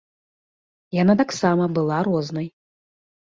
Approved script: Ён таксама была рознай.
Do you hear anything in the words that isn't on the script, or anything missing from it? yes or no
yes